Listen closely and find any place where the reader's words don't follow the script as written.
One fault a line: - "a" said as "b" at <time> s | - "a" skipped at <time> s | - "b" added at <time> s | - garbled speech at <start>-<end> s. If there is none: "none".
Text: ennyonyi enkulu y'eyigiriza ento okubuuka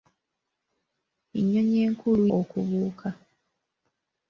- "y'eyigiriza ento" skipped at 2.2 s